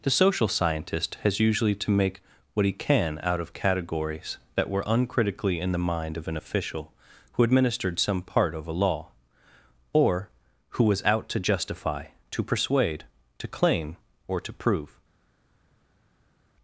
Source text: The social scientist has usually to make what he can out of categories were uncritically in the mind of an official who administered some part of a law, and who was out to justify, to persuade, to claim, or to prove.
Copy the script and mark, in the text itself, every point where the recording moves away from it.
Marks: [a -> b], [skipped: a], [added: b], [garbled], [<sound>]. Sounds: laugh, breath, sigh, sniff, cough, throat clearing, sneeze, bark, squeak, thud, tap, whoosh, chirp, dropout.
The social scientist has usually to make what he can out of categories [added: that] were uncritically in the mind of an official who administered some part of a law, [and -> or] who was out to justify, to persuade, to claim, or to prove.